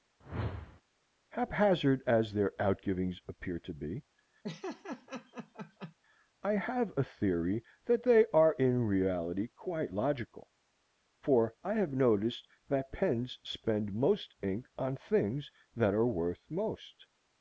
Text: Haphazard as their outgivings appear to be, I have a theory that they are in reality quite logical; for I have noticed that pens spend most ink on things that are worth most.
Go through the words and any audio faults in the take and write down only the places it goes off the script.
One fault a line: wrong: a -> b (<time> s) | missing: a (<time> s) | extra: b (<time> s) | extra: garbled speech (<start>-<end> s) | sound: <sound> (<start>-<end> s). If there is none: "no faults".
sound: whoosh (0.2-0.8 s)
sound: laugh (4.4-5.9 s)